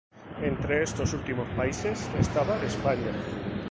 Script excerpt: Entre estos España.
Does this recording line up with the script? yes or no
no